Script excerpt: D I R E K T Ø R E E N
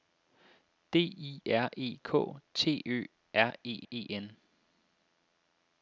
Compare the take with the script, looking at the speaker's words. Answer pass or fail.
pass